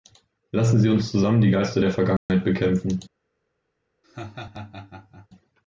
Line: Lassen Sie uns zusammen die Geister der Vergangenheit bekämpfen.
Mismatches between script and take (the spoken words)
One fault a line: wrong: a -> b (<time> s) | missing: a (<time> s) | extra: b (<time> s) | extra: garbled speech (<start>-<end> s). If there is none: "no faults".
no faults